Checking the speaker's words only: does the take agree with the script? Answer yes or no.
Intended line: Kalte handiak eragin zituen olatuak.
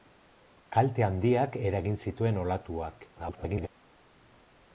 no